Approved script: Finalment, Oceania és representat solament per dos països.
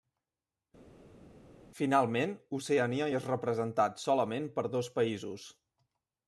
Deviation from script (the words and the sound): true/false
false